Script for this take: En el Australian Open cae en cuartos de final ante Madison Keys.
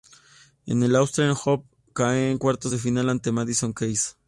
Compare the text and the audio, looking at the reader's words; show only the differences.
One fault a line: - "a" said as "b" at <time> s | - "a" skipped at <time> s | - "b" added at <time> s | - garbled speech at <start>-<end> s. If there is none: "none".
none